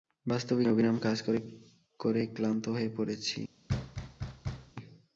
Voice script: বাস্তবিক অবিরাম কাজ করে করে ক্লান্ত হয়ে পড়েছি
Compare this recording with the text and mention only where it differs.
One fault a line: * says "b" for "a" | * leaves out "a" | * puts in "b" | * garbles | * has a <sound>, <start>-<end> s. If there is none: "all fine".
* has a thud, 3.7-4.7 s